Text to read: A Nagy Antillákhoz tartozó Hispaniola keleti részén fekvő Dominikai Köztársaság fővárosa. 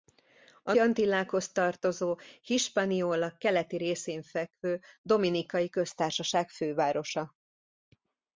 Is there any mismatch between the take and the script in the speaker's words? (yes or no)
yes